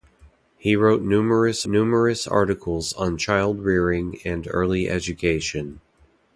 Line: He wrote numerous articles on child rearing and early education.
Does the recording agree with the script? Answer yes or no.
no